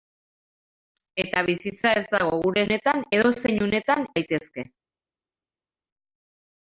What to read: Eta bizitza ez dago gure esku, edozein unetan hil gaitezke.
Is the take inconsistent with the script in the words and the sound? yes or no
yes